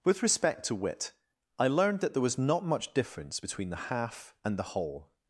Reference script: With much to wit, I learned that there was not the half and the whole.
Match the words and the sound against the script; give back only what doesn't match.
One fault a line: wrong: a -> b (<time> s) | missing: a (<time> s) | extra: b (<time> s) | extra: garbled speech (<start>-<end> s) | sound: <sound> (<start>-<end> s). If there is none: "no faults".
wrong: much -> respect (0.2 s)
extra: much difference between (2.6 s)